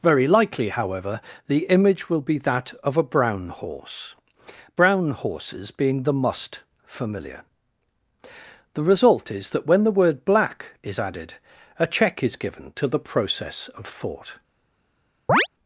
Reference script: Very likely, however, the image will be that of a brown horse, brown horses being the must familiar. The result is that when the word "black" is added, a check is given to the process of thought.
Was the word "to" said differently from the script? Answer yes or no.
no